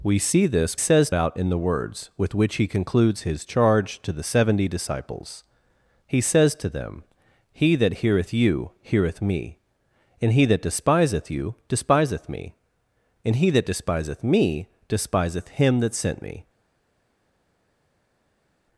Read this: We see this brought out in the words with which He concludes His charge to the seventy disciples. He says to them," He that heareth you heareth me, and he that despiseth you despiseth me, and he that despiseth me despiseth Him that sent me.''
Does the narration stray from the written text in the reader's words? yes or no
yes